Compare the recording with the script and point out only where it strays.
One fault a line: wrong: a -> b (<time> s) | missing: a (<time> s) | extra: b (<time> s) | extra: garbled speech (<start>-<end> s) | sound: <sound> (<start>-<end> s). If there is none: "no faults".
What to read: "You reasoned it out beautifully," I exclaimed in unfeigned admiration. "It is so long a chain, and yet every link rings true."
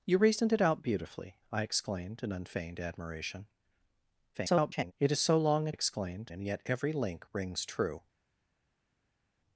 extra: garbled speech (4.3-4.9 s)
wrong: chain -> exclaimed (5.7 s)